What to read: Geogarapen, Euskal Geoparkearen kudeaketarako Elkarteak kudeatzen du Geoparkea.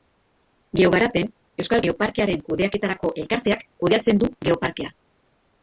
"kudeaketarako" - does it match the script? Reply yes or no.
yes